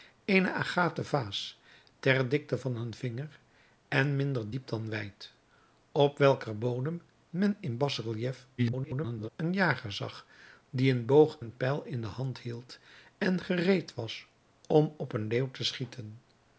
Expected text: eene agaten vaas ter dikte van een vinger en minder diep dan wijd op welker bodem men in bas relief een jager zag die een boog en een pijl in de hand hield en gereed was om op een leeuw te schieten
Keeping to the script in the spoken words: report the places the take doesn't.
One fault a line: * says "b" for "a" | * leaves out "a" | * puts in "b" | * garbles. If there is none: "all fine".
* garbles
* leaves out "en"